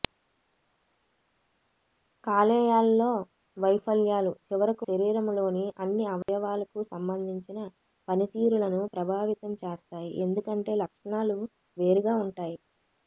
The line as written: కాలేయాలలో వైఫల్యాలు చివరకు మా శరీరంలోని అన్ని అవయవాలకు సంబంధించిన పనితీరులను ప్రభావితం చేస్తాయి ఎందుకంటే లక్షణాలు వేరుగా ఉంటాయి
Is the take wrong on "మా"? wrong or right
wrong